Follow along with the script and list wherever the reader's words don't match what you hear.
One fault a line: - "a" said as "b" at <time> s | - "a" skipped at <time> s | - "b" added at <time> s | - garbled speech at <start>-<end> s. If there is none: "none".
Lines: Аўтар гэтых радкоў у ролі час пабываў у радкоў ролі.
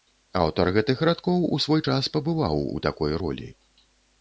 - "ролі" said as "свой" at 1.7 s
- "радкоў" said as "такой" at 2.9 s